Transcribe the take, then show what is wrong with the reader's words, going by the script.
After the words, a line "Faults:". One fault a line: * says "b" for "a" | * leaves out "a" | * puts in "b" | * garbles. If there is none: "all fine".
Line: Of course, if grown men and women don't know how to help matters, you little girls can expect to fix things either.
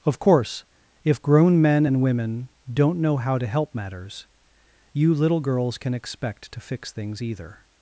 Of course, if grown men and women don't know how to help matters, you little girls can expect to fix things either.
Faults:
all fine